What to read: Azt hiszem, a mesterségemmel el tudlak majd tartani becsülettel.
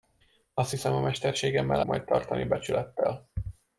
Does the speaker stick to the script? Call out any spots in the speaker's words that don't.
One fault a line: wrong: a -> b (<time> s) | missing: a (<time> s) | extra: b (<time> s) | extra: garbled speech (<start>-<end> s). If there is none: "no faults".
missing: el tudlak (1.8 s)